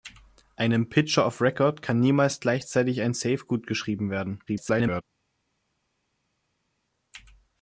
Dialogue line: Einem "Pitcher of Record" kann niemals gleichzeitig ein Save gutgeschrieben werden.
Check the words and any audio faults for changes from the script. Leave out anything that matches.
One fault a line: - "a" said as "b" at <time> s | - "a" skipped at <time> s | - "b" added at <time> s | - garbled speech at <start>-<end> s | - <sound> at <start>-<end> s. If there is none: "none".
- garbled speech at 4.5-5.0 s